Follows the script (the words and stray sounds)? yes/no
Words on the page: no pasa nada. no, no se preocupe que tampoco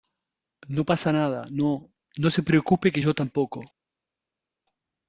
no